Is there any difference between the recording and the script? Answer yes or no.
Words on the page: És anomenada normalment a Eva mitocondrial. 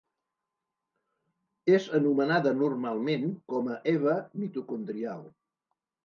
yes